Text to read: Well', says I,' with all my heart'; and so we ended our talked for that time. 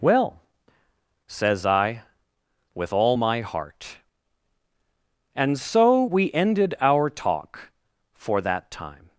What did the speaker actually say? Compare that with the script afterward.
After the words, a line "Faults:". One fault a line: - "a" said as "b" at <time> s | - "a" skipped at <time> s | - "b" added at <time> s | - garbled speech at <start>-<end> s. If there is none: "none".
Well', says I,' with all my heart'; and so we ended our talk for that time.
Faults:
- "talked" said as "talk" at 7.1 s